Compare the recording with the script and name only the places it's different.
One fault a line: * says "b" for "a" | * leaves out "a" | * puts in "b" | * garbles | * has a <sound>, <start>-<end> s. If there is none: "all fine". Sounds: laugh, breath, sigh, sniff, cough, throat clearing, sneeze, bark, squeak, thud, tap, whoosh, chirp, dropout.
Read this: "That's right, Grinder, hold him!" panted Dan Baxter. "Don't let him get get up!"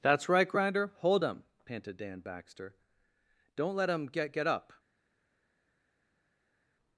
all fine